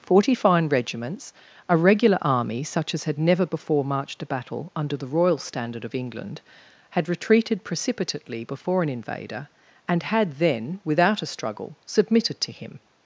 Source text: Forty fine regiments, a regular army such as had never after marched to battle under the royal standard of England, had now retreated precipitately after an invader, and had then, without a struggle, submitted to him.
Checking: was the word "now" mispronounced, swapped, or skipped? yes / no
yes